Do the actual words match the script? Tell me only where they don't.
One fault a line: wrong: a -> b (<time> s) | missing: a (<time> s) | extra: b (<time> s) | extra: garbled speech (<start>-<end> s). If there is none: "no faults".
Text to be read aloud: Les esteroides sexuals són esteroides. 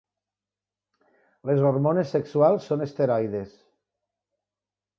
wrong: esteroides -> hormones (1.7 s)